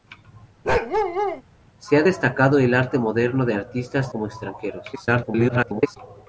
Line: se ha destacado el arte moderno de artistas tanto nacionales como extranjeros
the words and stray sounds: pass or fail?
fail